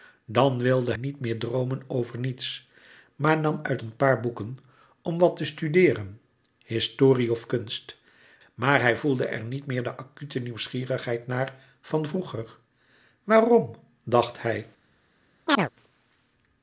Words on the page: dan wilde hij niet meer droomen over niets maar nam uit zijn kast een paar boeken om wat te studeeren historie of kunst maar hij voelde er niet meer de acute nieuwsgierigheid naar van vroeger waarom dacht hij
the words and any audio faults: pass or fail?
fail